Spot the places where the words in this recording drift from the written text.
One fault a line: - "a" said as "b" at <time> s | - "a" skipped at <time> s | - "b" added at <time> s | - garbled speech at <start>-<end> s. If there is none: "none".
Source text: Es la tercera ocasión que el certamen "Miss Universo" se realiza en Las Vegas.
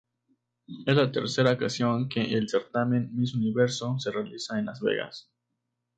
none